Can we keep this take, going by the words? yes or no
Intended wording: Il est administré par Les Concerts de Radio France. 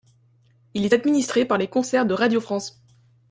yes